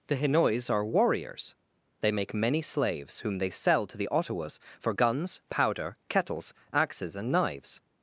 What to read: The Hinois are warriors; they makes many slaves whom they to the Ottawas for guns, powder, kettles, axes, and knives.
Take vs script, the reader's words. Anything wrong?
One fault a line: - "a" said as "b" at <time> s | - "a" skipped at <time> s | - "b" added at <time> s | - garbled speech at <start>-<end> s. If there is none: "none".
- "makes" said as "make" at 2.1 s
- "sell" added at 3.5 s